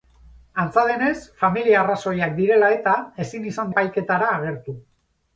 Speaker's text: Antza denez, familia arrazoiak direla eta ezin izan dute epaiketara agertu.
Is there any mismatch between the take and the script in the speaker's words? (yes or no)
yes